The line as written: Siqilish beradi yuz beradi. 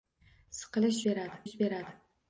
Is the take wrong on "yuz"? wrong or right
right